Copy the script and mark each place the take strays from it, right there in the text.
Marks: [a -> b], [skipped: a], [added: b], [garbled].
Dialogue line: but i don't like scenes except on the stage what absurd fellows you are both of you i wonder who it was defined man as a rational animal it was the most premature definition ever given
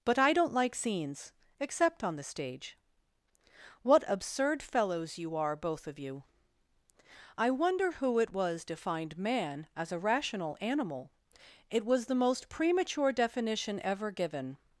but i don't like scenes except on the stage what absurd fellows you are both of you i wonder who it was defined man as a rational animal it was the most premature definition ever given